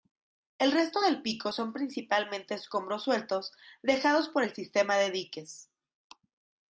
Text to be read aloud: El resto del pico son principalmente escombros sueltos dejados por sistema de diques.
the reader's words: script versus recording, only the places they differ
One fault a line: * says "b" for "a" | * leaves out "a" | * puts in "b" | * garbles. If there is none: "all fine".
* puts in "el"